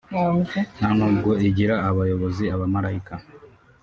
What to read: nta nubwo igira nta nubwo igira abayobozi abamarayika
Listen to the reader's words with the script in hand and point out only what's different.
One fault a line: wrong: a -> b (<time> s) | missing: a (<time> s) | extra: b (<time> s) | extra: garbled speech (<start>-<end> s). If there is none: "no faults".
missing: nta nubwo igira (1.8 s)